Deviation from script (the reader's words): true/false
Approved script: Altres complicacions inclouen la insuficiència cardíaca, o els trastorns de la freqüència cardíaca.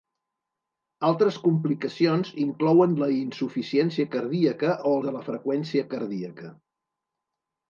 true